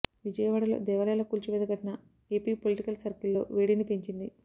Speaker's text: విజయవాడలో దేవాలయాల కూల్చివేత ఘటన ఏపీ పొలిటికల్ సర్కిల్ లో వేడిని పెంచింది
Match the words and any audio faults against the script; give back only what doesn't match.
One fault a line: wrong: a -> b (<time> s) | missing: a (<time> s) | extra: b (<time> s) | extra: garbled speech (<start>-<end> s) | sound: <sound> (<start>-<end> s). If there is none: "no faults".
no faults